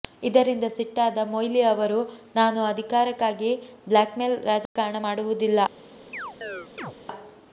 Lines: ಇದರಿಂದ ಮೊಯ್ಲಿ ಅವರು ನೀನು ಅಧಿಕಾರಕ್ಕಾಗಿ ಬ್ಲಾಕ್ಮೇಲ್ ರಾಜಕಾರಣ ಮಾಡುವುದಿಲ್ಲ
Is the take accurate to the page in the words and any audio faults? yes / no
no